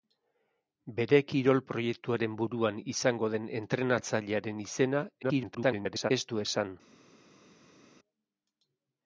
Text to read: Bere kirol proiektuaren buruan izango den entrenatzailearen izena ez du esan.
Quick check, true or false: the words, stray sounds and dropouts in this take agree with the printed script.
false